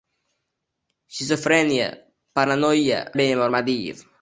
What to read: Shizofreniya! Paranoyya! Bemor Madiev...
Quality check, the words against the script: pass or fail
pass